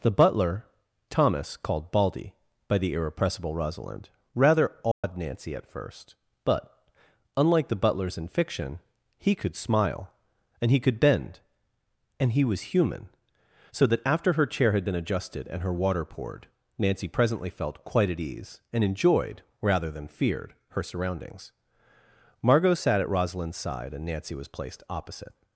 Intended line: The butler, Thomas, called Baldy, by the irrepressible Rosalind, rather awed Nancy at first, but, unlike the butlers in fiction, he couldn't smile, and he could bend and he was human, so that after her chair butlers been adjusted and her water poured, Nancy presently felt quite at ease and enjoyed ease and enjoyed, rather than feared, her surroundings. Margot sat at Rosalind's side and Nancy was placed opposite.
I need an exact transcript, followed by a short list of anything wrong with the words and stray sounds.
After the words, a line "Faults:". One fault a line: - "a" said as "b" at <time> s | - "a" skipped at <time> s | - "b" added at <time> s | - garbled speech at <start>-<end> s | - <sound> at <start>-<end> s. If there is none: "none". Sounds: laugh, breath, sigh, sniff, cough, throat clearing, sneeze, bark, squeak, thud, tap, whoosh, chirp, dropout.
The butler, Thomas, called Baldy, by the irrepressible Rosalind, rather awed Nancy at first, but, unlike the butlers in fiction, he could smile, and he could bend and he was human, so that after her chair had been adjusted and her water poured, Nancy presently felt quite at ease and enjoyed, rather than feared, her surroundings. Margot sat at Rosalind's side and Nancy was placed opposite.
Faults:
- dropout at 4.9-5.0 s
- "couldn't" said as "could" at 9.3 s
- "butlers" said as "had" at 14.7 s
- "ease and enjoyed" skipped at 19.4 s